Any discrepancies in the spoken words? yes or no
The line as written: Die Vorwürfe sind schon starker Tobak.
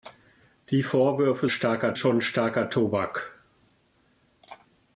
yes